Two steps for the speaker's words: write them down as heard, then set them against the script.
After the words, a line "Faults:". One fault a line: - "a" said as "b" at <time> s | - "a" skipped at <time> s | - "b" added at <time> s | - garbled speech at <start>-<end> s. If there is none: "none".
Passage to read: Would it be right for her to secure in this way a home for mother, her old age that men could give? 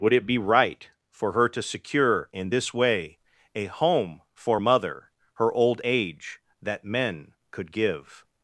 Would it be right for her to secure in this way a home for mother, her old age that men could give?
Faults:
none